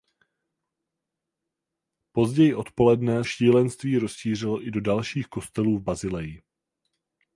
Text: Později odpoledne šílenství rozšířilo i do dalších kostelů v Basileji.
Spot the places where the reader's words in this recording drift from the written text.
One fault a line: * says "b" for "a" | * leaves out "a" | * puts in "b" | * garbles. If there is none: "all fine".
all fine